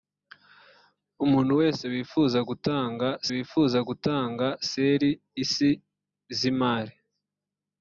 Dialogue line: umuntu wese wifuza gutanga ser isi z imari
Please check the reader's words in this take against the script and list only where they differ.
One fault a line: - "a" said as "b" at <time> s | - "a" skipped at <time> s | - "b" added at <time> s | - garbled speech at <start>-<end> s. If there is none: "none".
- "wifuza gutanga" added at 3.3 s